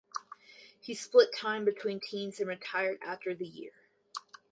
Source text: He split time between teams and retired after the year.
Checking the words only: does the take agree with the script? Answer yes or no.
yes